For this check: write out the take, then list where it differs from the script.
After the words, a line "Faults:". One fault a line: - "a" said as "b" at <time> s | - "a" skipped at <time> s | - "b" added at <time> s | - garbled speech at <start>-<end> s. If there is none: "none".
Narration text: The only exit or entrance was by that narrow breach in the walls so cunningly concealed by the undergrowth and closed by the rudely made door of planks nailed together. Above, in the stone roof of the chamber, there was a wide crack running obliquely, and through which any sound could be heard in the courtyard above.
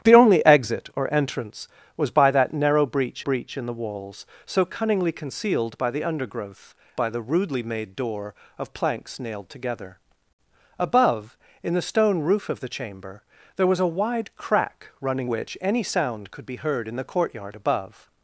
The only exit or entrance was by that narrow breach breach in the walls so cunningly concealed by the undergrowth by the rudely made door of planks nailed together. Above, in the stone roof of the chamber, there was a wide crack running which any sound could be heard in the courtyard above.
Faults:
- "breach" added at 3.2 s
- "and closed" skipped at 6.7 s
- "obliquely and through" skipped at 15.3 s